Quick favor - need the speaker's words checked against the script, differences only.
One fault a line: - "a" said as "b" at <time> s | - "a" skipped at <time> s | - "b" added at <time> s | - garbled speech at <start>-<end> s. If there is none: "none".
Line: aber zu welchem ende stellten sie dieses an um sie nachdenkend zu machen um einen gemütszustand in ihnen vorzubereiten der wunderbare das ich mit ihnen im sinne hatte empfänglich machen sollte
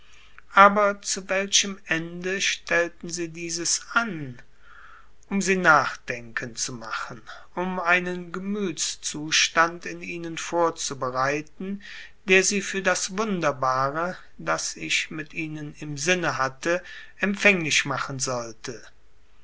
- "sie für das" added at 12.4 s